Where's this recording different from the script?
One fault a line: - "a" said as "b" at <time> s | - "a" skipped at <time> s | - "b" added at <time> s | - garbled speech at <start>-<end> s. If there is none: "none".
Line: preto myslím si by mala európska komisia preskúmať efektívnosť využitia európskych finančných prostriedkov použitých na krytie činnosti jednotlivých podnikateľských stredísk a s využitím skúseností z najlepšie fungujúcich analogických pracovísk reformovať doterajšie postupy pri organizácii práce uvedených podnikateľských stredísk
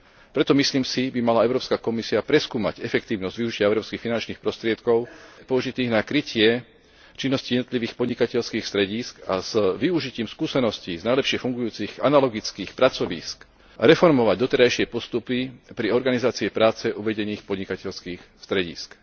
none